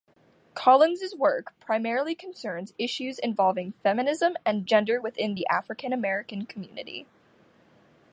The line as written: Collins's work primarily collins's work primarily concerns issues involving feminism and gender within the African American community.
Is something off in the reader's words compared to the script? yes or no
yes